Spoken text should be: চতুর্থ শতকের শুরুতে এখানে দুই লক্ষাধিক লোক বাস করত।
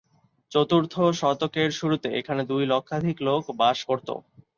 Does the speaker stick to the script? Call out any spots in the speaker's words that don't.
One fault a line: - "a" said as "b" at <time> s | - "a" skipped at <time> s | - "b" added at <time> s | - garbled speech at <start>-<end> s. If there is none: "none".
none